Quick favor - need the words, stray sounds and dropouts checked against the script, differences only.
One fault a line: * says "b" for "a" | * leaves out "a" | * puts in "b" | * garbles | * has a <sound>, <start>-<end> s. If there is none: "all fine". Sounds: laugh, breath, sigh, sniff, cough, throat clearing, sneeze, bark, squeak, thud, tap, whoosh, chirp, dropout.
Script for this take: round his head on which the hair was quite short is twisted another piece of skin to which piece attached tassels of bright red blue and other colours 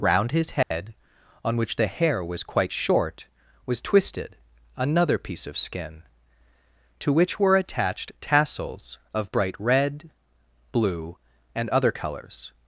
* has a dropout, 0.6-0.7 s
* says "was" for "is"
* says "were" for "piece"